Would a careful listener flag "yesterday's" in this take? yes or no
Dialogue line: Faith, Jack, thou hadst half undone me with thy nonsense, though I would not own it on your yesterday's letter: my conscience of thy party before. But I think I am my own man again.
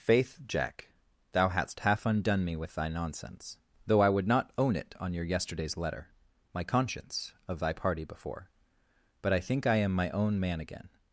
no